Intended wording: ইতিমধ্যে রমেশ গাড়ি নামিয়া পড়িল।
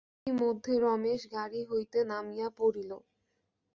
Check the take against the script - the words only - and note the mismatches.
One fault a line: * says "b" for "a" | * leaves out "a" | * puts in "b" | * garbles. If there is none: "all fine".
* puts in "হইতে"